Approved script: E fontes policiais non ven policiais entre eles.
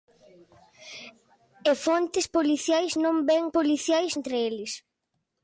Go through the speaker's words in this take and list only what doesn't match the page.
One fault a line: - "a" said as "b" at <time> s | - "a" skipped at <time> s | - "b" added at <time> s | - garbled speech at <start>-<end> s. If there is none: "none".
none